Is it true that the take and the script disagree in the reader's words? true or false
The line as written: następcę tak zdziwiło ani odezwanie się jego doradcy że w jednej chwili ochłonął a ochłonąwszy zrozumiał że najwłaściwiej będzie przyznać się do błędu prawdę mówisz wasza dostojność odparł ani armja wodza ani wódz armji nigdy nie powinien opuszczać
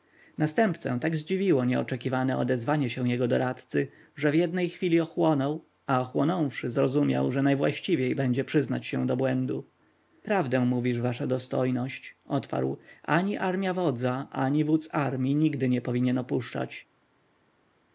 true